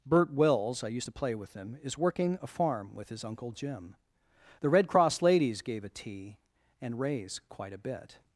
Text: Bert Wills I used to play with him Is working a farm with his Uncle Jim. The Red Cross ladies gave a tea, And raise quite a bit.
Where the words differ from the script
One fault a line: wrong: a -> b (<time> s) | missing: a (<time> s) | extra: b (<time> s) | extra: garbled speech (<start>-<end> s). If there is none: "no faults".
no faults